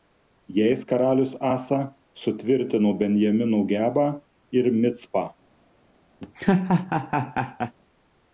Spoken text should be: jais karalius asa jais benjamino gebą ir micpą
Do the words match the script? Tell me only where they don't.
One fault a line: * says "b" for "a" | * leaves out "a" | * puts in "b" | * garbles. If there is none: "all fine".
* says "sutvirtino" for "jais"